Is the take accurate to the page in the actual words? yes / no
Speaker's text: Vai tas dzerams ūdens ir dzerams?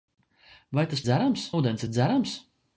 yes